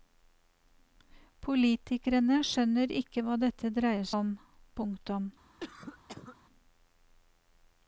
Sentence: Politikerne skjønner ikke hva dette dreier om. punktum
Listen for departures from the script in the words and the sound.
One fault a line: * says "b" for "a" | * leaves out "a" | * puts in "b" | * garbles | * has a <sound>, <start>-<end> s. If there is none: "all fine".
* has a cough, 5.6-6.4 s